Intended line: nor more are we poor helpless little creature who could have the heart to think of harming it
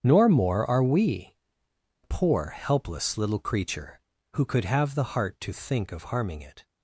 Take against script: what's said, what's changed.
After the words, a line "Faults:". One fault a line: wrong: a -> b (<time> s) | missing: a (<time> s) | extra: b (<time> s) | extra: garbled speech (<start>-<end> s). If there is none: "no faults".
nor more are we poor helpless little creature who could have the heart to think of harming it
Faults:
no faults